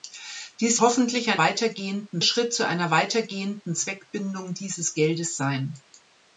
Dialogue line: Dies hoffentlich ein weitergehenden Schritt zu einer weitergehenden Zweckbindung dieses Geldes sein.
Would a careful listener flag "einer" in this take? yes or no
no